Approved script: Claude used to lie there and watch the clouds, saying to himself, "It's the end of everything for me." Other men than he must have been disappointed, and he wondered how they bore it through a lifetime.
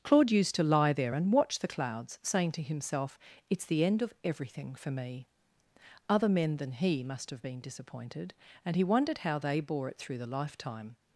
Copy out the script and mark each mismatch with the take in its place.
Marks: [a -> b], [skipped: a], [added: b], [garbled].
Claude used to lie there and watch the clouds, saying to himself, "It's the end of everything for me." Other men than he must have been disappointed, and he wondered how they bore it through [a -> the] lifetime.